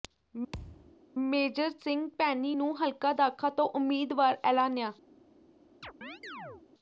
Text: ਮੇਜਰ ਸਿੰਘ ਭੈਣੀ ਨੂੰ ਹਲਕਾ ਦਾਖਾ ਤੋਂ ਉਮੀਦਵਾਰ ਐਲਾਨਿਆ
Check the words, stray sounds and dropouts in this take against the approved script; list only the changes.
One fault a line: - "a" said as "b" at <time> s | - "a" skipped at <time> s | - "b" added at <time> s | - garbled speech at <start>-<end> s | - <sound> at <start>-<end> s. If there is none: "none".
- thud at 0.5-0.9 s
- chirp at 5.8-6.7 s